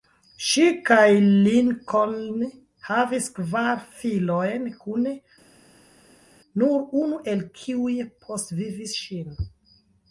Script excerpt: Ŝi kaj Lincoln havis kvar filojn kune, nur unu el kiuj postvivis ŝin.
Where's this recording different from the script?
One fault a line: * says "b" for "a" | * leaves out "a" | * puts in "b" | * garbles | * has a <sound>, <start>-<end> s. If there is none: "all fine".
all fine